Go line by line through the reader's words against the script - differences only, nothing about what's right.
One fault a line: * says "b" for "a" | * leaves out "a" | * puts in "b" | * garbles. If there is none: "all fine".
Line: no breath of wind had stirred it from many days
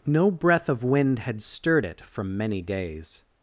all fine